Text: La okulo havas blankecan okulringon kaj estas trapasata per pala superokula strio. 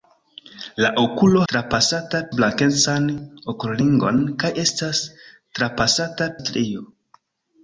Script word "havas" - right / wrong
wrong